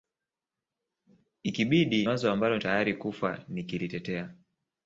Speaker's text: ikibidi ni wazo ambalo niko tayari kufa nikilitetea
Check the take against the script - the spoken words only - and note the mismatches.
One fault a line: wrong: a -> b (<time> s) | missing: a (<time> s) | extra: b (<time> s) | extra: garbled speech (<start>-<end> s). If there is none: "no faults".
missing: ni (2.1 s)
missing: niko (2.6 s)